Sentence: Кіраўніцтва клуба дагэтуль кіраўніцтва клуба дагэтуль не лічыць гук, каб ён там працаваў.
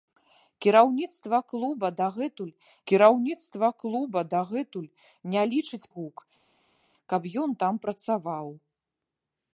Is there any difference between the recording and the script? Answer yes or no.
no